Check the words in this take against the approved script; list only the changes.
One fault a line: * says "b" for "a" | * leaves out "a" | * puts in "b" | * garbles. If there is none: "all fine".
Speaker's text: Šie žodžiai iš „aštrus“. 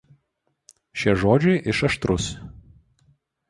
all fine